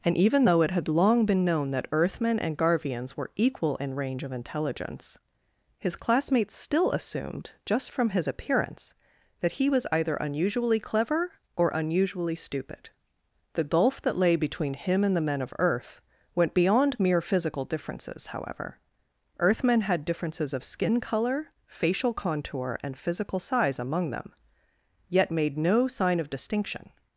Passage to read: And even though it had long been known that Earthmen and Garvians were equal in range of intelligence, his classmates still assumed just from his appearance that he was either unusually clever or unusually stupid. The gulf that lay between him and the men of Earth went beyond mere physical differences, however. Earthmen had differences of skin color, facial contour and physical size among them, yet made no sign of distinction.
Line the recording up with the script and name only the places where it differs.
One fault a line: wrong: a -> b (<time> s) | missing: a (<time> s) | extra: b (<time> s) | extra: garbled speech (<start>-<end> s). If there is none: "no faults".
no faults